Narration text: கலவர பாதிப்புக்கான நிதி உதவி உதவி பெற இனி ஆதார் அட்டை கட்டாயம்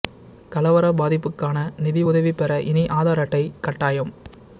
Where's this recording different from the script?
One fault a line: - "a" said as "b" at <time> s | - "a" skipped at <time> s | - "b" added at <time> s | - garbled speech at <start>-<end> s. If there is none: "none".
- "உதவி" skipped at 2.3 s